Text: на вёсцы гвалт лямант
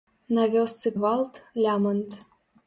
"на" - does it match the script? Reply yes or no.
yes